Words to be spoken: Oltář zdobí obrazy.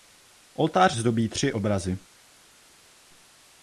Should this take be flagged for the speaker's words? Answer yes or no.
yes